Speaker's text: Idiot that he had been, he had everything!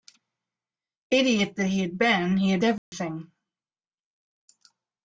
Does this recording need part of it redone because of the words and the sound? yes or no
yes